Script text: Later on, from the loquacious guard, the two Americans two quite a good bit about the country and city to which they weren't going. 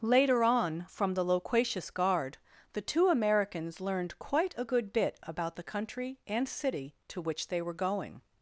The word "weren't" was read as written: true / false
false